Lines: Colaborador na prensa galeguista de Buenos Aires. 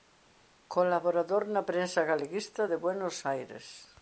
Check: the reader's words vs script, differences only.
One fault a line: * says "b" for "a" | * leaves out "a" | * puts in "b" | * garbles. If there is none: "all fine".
all fine